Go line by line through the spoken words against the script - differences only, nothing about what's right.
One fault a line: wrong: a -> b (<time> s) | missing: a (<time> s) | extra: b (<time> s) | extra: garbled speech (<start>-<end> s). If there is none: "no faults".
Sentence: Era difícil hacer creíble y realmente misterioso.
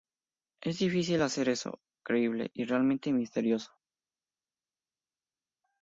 wrong: Era -> Es (0.6 s)
extra: eso (1.5 s)